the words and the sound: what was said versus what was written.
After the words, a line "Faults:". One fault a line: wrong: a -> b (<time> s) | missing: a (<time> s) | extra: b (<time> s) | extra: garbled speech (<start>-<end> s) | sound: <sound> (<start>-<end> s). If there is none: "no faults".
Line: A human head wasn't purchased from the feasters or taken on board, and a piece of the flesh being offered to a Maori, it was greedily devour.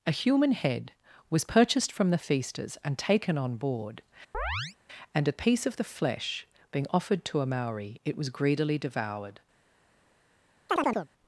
A human head was purchased from the feasters and taken on board, and a piece of the flesh being offered to a Maori, it was greedily devoured.
Faults:
wrong: wasn't -> was (1.3 s)
wrong: or -> and (2.8 s)
sound: chirp (4.3-4.8 s)
wrong: devour -> devoured (8.8 s)
sound: chirp (10.7-11.1 s)